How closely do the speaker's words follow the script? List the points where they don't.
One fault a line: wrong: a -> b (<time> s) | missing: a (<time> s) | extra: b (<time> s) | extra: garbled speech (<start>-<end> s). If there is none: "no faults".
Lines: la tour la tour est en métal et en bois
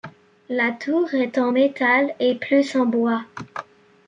missing: la tour (1.1 s)
extra: plus (2.3 s)